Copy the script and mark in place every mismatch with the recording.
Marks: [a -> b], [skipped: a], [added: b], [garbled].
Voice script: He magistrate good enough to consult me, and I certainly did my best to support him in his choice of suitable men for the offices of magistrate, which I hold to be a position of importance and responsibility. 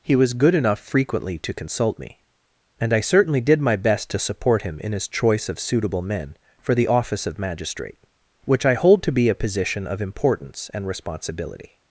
He [magistrate -> was] good enough [added: frequently] to consult me, and I certainly did my best to support him in his choice of suitable men for the [offices -> office] of magistrate, which I hold to be a position of importance and responsibility.